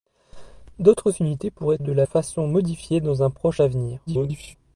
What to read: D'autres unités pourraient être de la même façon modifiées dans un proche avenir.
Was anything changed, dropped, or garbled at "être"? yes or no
yes